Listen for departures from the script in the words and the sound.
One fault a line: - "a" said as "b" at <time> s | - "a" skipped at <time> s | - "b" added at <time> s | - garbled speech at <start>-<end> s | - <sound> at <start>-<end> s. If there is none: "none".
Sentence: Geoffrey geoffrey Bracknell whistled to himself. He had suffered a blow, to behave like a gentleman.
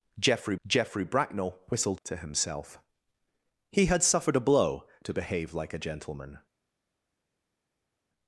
none